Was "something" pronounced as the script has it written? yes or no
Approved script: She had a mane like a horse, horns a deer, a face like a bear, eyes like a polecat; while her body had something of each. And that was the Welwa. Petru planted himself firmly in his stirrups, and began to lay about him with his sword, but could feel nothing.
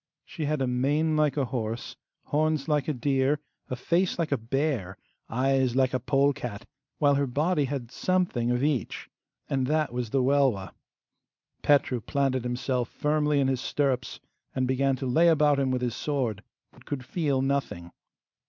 yes